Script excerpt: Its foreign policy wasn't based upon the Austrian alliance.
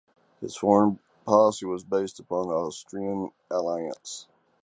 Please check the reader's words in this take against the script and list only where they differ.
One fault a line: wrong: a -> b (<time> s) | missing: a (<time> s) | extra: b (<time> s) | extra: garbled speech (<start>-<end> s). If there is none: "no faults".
wrong: Its -> His (0.4 s)
wrong: wasn't -> was (1.7 s)